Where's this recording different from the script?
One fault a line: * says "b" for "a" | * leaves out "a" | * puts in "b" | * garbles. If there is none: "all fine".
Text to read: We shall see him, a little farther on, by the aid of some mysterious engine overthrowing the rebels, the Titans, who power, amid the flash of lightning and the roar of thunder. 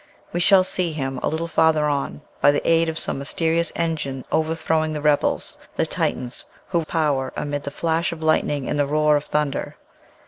all fine